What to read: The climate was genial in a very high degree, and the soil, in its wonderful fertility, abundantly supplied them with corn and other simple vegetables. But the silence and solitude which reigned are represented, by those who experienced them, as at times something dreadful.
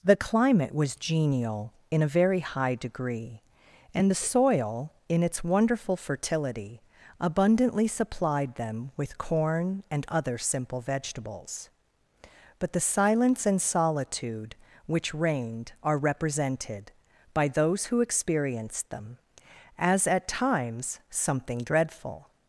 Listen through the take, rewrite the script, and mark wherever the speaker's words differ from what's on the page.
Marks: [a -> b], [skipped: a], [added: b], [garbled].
The climate was genial in a very high degree, and the soil, in its wonderful fertility, abundantly supplied them with corn and other simple vegetables. But the silence and solitude which reigned are represented, by those who experienced them, as at times something dreadful.